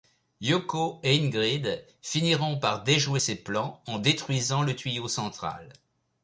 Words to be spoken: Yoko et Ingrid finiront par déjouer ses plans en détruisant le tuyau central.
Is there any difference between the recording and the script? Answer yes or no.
no